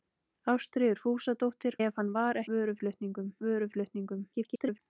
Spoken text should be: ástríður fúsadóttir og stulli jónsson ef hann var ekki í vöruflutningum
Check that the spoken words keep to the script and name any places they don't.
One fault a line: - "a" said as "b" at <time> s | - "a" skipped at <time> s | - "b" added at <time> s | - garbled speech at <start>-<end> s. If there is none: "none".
- "og stulli jónsson" skipped at 1.8 s
- "ekki" said as "vöruflutningum" at 2.5 s
- garbled speech at 4.3-4.8 s